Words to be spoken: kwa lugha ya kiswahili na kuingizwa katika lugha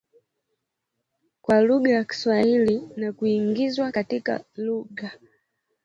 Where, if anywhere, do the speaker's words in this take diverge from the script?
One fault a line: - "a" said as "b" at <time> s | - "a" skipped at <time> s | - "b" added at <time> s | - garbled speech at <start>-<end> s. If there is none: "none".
none